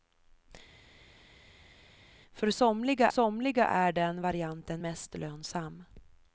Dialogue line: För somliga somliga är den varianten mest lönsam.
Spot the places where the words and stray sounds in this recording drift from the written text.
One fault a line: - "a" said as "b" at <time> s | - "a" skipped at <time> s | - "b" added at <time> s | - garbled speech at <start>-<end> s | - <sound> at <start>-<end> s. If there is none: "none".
none